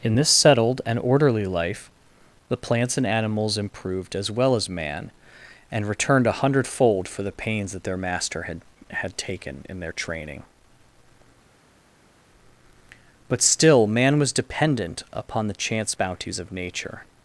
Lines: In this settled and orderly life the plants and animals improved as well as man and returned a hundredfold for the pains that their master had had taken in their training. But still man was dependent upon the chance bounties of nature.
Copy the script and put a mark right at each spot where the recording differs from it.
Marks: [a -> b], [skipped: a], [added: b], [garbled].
In this settled and orderly life the plants and animals improved as well as man and returned a hundredfold for the pains that their master had had taken in their training. But still man was dependent upon the chance bounties of nature.